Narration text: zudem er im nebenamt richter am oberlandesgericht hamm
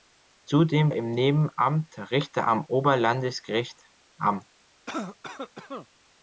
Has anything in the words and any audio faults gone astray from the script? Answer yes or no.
yes